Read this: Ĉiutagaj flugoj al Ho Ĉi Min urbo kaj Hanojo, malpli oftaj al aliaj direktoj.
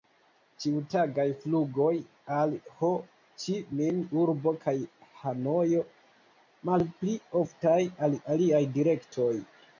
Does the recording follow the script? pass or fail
pass